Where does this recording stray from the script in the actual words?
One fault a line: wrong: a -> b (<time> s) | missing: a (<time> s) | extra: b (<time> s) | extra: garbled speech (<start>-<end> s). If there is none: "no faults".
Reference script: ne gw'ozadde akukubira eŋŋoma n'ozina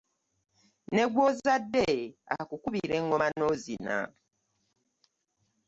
no faults